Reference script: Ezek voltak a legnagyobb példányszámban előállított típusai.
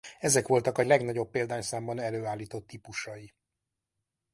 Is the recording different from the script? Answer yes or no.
no